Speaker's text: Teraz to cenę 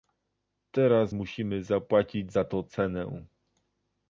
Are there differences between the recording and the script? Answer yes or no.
yes